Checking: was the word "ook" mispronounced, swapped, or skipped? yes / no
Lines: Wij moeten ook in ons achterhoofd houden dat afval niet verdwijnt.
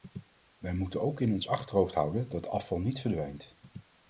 no